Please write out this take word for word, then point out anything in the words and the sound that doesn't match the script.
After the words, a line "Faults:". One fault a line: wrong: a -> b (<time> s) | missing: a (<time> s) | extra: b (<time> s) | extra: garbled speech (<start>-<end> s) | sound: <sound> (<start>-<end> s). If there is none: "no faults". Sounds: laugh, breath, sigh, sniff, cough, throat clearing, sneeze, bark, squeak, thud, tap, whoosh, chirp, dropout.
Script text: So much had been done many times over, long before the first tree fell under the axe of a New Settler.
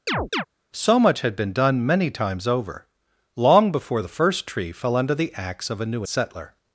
So much had been done many times over, long before the first tree fell under the axe of a New Settler.
Faults:
sound: chirp (0.1-0.4 s)